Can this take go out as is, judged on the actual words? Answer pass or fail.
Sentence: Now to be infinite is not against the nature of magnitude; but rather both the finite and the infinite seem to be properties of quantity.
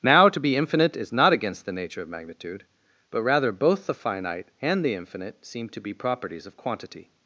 pass